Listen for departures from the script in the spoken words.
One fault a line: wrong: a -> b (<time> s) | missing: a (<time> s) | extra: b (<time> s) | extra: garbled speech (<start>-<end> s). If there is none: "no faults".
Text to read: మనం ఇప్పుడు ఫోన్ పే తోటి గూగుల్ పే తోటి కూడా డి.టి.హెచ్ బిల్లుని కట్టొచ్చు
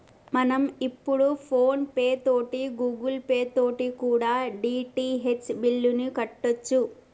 no faults